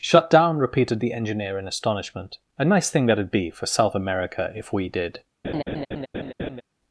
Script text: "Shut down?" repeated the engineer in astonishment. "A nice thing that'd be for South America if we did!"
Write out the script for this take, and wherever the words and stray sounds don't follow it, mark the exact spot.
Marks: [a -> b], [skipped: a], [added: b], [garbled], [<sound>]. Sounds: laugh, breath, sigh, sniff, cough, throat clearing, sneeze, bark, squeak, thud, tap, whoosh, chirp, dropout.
"Shut down?" repeated the engineer in astonishment. "A nice thing that'd be for South America if we did!" [laugh]